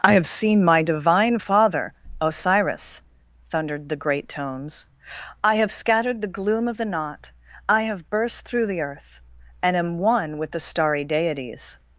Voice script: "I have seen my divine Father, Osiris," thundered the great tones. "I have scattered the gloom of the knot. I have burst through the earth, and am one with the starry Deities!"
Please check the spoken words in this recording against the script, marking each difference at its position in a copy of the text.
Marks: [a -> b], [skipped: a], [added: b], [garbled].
"I have seen my divine Father, Osiris," thundered the great tones. "I have scattered the gloom of the knot. I have burst through the earth, and am one with the starry Deities!"